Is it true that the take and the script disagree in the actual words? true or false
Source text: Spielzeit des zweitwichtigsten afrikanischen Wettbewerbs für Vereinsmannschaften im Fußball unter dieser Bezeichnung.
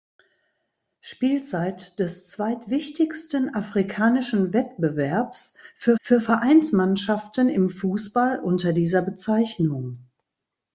true